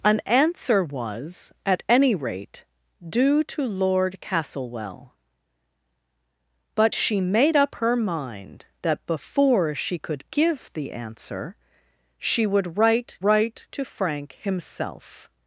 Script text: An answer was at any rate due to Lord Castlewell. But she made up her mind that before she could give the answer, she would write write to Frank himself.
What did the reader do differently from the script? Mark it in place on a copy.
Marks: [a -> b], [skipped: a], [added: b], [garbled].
An answer was at any rate due to Lord Castlewell. But she made up her mind that before she could give the answer, she would write write to Frank himself.